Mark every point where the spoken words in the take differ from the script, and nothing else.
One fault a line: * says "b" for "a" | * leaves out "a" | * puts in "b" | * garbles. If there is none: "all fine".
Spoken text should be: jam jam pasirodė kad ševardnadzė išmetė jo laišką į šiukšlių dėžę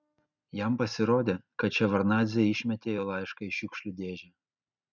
* leaves out "jam"